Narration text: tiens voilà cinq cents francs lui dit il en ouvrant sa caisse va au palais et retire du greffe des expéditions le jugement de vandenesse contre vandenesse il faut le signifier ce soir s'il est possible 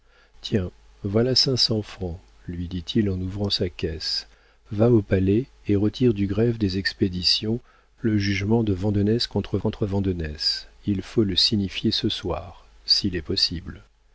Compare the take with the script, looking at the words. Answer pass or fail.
fail